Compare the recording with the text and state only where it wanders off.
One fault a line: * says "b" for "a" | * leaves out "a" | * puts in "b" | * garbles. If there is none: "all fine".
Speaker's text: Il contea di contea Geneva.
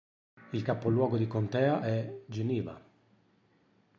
* says "capoluogo" for "contea"
* puts in "è"